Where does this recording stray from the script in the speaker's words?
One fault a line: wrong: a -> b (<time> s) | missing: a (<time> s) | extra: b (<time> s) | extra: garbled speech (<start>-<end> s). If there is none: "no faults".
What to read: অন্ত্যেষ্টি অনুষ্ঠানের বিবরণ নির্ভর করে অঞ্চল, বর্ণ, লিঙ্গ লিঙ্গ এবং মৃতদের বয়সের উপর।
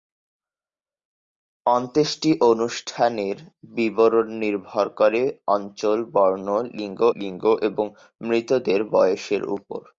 no faults